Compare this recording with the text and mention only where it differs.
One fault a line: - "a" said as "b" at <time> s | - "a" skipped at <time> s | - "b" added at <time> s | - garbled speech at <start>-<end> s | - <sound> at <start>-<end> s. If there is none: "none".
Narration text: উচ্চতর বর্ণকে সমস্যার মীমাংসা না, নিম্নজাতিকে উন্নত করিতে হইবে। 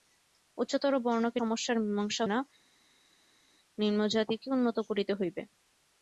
none